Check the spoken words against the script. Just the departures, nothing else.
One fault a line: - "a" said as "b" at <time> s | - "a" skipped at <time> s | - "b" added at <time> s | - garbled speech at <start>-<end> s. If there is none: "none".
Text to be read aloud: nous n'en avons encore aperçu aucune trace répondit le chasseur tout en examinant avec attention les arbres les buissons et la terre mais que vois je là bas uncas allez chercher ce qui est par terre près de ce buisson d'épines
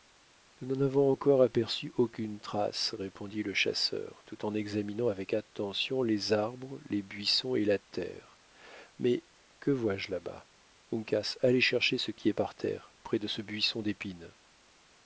none